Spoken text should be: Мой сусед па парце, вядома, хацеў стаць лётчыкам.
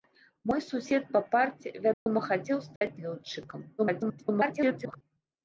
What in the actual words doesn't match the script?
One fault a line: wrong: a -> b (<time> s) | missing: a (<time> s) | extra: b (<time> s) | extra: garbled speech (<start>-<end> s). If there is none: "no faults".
extra: garbled speech (3.8-5.0 s)